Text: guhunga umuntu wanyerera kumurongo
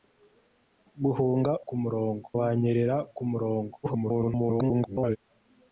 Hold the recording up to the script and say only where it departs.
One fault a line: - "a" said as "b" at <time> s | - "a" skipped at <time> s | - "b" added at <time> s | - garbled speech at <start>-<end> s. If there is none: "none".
- "umuntu" said as "kumurongo" at 1.7 s
- garbled speech at 3.8-5.2 s